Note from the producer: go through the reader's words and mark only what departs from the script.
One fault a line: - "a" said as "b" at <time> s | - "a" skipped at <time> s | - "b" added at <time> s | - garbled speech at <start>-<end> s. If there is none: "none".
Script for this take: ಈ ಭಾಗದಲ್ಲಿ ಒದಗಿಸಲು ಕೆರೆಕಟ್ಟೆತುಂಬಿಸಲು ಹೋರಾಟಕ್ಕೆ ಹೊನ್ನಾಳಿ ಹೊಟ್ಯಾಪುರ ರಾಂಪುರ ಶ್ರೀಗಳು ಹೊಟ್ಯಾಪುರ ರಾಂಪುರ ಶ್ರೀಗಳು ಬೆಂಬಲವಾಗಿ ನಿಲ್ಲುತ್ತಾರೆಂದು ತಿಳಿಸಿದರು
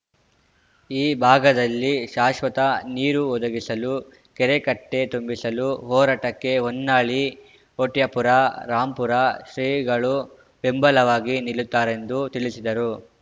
- "ಶಾಶ್ವತ ನೀರು" added at 2.1 s
- "ಹೊಟ್ಯಾಪುರ ರಾಂಪುರ ಶ್ರೀಗಳು" skipped at 10.2 s